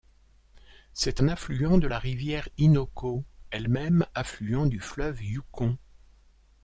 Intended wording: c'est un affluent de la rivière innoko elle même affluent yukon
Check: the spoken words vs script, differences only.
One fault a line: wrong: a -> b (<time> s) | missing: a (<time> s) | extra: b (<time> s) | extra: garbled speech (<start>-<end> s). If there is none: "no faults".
extra: du fleuve (4.7 s)